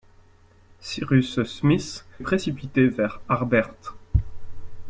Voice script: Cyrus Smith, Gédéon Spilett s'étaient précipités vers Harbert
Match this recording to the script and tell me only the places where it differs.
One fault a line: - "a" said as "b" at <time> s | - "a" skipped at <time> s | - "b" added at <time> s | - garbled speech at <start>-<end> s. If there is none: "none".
- "Gédéon Spilett s'étaient" skipped at 2.0 s